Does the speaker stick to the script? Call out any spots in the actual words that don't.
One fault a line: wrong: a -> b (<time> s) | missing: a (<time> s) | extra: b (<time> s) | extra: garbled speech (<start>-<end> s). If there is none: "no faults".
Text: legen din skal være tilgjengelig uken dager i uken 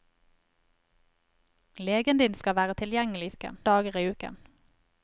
no faults